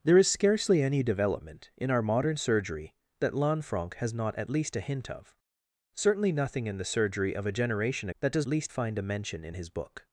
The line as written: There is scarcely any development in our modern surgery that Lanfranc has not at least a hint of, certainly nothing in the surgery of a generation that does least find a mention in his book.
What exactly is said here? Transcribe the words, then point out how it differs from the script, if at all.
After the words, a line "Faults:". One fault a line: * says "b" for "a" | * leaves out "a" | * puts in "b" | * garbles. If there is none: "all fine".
There is scarcely any development in our modern surgery that Lanfranc has not at least a hint of, certainly nothing in the surgery of a generation that does least find a mention in his book.
Faults:
all fine